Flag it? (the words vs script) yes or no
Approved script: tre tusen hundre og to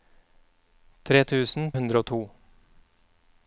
no